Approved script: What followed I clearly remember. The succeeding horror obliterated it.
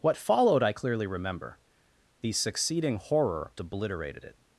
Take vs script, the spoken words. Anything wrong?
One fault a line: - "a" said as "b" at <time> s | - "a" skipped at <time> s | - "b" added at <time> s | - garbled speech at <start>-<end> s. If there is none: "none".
none